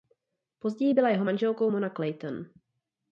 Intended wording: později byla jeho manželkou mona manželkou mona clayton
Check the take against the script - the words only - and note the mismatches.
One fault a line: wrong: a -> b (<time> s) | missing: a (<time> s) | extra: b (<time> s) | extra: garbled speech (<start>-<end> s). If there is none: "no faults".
missing: manželkou mona (1.9 s)